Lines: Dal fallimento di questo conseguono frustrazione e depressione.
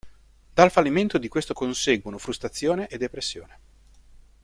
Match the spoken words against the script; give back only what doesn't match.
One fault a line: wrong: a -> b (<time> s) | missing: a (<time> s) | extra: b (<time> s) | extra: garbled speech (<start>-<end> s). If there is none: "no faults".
no faults